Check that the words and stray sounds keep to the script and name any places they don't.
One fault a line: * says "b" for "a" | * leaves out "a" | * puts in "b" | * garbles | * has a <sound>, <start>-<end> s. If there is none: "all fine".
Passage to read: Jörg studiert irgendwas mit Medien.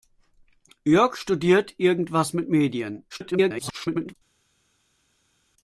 * garbles